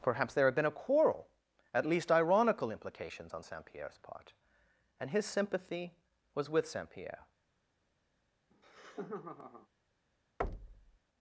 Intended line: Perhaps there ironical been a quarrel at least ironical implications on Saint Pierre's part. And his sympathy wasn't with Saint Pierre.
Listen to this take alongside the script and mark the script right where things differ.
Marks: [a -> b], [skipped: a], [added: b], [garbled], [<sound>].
Perhaps there [ironical -> had] been a quarrel at least ironical implications on Saint Pierre's part. And his sympathy [wasn't -> was] with Saint Pierre. [laugh] [thud]